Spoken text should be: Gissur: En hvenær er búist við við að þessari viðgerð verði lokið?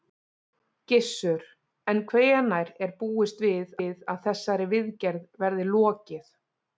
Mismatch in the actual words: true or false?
false